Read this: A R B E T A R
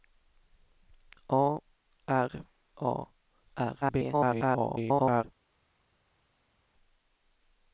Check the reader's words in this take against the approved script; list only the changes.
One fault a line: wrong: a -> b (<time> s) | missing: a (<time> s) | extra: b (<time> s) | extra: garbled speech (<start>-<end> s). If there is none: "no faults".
missing: B E T (2.3 s)
extra: garbled speech (3.8-5.2 s)